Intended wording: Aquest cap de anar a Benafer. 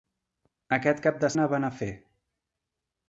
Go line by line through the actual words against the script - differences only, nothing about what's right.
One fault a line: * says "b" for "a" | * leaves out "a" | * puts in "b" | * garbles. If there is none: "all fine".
all fine